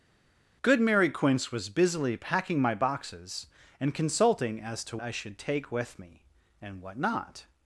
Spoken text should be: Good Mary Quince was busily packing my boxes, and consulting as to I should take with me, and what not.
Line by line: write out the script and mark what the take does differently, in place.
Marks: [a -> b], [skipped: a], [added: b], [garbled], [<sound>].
Good Mary Quince was busily packing my boxes, and consulting as to I should take with me, and what not.